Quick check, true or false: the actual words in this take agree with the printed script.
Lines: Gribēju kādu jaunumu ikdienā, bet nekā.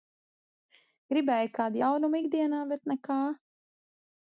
true